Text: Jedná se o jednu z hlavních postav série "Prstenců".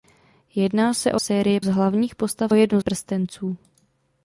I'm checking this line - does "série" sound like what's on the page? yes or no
no